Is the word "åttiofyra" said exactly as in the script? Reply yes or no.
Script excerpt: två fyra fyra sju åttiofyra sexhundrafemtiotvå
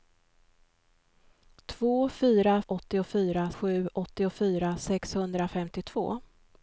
yes